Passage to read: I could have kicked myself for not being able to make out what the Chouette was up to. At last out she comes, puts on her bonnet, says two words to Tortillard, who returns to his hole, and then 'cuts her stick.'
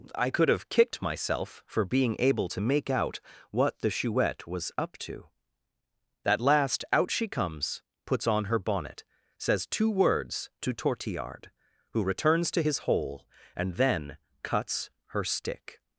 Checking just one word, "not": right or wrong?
wrong